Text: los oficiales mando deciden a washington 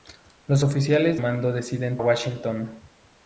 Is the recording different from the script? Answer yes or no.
no